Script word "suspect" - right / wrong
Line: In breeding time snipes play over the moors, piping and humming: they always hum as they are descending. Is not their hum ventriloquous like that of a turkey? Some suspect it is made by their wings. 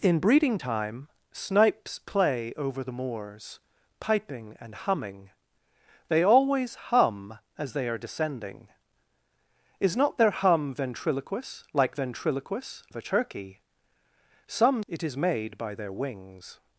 wrong